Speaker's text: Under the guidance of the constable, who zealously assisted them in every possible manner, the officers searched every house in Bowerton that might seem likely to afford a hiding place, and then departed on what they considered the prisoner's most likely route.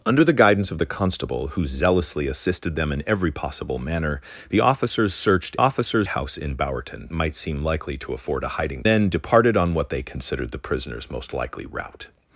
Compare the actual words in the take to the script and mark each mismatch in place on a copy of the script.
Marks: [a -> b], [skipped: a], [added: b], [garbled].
Under the guidance of the constable, who zealously assisted them in every possible manner, the officers searched [every -> officers] house in Bowerton [skipped: that] might seem likely to afford a hiding [skipped: place, and] then departed on what they considered the prisoner's most likely route.